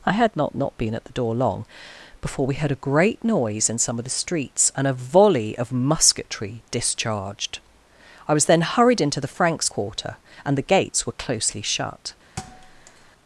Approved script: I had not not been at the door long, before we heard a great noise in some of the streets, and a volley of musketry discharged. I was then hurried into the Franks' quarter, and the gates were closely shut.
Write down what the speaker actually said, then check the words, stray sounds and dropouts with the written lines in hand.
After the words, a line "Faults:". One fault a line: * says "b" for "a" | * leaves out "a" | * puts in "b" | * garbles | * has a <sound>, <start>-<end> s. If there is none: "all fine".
I had not not been at the door long, before we heard a great noise in some of the streets, and a volley of musketry discharged. I was then hurried into the Franks' quarter, and the gates were closely shut.
Faults:
* has a thud, 12.4-13.1 s